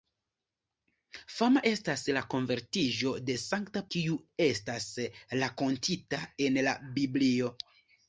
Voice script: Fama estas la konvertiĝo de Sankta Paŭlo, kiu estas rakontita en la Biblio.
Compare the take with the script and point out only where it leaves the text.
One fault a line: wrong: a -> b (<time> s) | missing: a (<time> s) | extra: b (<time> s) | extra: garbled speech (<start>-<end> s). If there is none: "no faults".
missing: Paŭlo (3.8 s)